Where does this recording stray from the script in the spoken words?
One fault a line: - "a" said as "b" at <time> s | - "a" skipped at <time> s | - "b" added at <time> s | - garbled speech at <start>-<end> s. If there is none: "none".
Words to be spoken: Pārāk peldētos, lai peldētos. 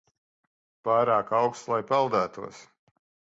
- "peldētos" said as "auksts" at 1.4 s